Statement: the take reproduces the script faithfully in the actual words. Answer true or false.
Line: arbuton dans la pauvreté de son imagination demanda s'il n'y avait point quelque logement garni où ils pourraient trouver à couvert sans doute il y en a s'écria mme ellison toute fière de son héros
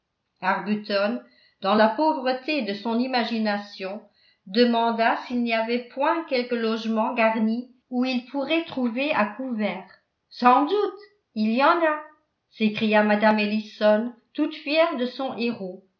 true